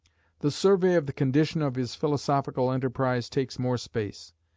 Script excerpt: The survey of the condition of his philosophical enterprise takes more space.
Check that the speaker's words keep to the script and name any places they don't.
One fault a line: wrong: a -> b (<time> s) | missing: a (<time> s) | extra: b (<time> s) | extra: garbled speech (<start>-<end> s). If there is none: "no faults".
no faults